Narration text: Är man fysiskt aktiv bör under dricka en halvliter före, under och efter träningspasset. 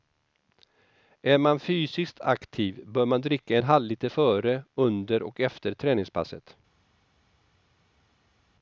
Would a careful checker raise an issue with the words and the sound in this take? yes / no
yes